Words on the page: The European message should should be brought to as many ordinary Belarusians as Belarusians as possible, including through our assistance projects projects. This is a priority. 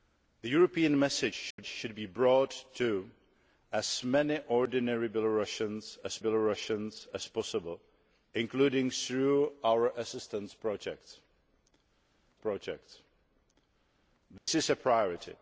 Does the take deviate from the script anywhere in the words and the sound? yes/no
yes